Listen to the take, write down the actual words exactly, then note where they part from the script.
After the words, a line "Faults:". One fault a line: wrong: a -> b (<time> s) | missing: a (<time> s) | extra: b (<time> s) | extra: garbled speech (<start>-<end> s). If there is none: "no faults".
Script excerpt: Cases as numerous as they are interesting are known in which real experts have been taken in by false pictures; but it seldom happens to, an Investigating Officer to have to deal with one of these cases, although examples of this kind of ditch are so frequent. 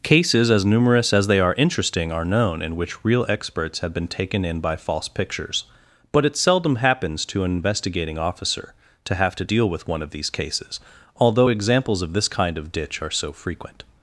Cases as numerous as they are interesting are known in which real experts have been taken in by false pictures; but it seldom happens to, an Investigating Officer to have to deal with one of these cases, although examples of this kind of ditch are so frequent.
Faults:
no faults